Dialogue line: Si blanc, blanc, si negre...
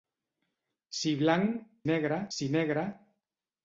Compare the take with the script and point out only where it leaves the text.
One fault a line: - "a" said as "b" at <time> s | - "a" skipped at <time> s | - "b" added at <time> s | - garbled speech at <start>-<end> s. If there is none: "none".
- "blanc" said as "negre" at 1.9 s